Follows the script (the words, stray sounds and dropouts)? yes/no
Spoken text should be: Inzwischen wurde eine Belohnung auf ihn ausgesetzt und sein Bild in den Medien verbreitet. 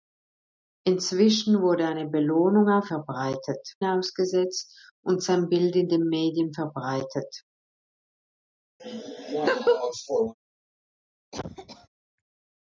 no